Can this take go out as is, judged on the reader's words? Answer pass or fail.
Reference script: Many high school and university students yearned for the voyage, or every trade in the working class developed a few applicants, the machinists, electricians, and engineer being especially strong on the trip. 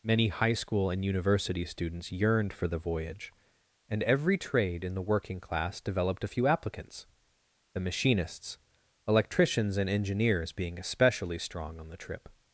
fail